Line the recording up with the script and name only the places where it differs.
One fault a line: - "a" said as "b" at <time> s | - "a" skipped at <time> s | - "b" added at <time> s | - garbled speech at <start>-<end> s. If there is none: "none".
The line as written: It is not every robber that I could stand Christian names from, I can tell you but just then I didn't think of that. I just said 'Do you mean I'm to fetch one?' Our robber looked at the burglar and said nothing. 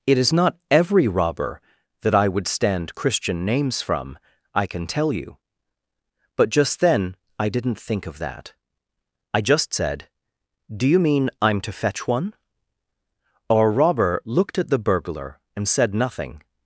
- "could" said as "would" at 2.3 s